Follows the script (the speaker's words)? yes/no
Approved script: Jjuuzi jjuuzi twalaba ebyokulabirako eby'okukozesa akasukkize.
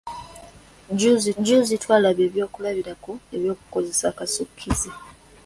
yes